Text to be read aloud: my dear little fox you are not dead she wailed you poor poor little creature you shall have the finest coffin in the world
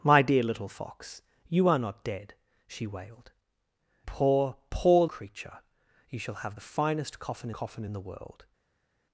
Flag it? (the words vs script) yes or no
yes